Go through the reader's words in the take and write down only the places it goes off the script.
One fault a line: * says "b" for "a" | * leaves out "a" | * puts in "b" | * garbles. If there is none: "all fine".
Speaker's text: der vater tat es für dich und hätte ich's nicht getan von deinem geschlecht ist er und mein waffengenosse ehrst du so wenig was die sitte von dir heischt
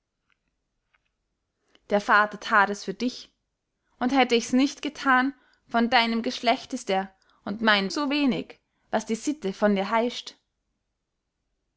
* leaves out "waffengenosse ehrst du"